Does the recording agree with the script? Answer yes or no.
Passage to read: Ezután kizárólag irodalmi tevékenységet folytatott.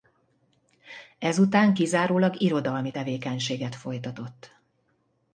yes